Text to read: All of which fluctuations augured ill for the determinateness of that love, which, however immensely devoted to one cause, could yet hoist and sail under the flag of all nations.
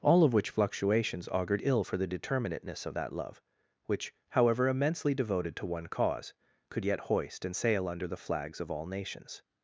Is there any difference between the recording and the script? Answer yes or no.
yes